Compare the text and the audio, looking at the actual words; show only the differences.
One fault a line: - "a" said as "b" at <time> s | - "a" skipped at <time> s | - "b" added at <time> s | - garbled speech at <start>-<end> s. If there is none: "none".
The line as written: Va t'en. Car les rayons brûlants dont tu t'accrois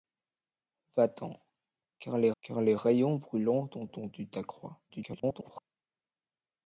- "car les" added at 2.4 s
- "dont" added at 3.9 s
- garbled speech at 4.9-5.6 s